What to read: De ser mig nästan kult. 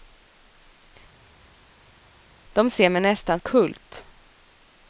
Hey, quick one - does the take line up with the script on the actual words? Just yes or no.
yes